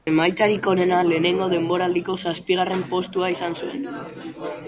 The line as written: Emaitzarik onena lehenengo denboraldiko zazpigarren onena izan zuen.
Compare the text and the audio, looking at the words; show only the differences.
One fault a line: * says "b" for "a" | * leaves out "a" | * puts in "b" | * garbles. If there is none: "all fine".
* says "postua" for "onena"